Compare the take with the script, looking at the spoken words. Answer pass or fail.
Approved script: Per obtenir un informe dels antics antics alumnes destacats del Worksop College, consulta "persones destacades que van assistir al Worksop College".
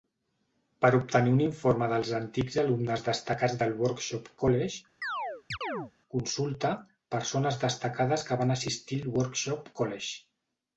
fail